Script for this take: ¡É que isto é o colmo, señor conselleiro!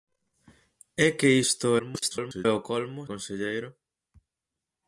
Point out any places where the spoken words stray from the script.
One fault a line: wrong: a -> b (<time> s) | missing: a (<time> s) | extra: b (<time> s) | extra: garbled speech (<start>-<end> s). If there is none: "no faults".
extra: garbled speech (1.8-2.5 s)
missing: señor (3.0 s)